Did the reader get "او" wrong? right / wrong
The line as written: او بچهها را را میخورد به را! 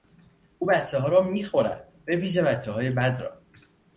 right